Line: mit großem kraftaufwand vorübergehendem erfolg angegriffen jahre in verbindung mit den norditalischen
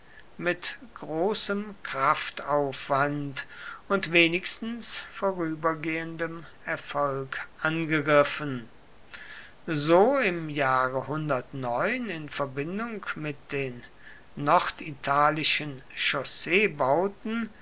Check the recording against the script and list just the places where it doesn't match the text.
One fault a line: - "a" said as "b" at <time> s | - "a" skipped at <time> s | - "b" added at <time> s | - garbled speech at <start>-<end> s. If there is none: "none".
- "und wenigstens" added at 3.9 s
- "so im" added at 9.7 s